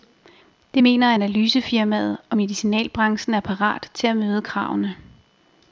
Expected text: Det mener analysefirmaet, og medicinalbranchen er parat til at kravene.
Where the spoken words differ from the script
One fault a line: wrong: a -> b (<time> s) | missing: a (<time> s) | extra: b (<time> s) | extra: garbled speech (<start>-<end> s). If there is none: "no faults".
extra: møde (4.2 s)